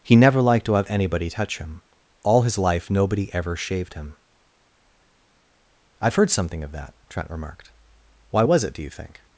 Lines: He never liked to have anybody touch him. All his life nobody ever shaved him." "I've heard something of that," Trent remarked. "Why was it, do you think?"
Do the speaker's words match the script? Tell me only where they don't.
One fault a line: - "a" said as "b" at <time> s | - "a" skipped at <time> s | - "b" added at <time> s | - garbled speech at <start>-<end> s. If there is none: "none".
none